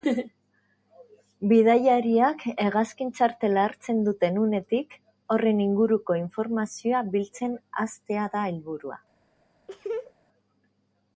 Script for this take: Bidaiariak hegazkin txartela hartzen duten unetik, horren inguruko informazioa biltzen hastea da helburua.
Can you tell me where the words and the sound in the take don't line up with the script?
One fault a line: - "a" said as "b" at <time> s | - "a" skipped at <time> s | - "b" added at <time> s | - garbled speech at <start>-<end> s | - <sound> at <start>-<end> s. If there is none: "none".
- laugh at 9.7-10.1 s